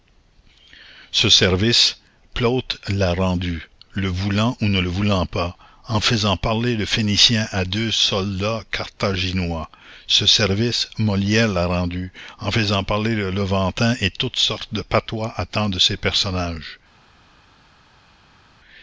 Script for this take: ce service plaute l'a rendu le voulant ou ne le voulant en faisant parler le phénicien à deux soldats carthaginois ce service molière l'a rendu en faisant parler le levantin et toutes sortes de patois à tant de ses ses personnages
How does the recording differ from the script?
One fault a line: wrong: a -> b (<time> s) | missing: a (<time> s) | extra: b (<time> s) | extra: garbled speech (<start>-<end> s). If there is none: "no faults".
extra: pas (5.3 s)
missing: ses (16.0 s)